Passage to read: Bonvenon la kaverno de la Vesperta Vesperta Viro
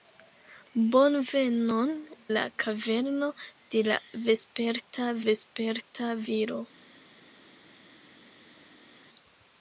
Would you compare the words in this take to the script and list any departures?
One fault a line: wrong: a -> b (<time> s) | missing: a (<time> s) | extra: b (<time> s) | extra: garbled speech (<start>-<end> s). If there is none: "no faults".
no faults